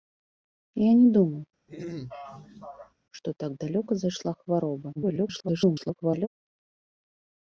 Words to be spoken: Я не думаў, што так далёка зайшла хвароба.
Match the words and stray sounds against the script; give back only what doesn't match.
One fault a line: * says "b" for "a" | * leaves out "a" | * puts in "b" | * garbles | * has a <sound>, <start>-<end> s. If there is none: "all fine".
* has a throat clearing, 1.7-2.9 s
* garbles